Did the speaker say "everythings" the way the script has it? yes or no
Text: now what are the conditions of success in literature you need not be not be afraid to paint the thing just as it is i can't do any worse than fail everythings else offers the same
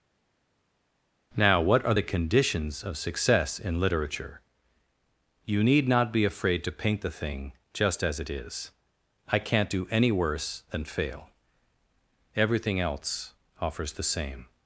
no